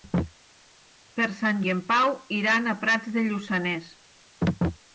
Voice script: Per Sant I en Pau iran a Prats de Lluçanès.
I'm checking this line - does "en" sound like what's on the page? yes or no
yes